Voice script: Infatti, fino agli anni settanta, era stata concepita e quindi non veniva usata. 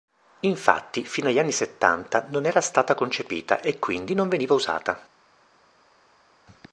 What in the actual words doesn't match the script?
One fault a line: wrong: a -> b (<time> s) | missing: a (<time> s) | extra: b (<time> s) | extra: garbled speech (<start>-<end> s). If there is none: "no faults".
extra: non (2.3 s)